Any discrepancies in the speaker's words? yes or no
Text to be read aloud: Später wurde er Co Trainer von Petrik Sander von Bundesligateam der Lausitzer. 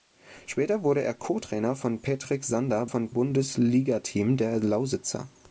no